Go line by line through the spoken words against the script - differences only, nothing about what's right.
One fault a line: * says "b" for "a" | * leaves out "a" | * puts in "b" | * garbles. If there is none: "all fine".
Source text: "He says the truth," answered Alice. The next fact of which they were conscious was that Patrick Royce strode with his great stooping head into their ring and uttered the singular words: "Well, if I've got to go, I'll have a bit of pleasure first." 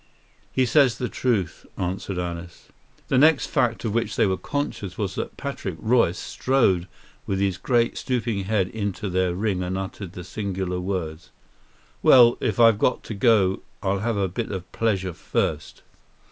all fine